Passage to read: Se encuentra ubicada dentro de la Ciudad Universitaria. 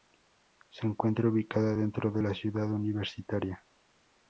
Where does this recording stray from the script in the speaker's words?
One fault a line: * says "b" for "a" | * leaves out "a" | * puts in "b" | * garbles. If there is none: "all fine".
all fine